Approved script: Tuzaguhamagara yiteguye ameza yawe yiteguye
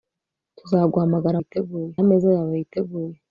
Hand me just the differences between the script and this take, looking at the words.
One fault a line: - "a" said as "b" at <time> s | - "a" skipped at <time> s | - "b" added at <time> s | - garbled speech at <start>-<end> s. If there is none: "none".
none